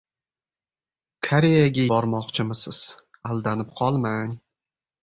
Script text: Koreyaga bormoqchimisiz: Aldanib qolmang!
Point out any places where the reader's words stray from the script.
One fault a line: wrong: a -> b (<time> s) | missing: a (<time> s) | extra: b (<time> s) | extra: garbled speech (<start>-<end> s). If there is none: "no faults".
no faults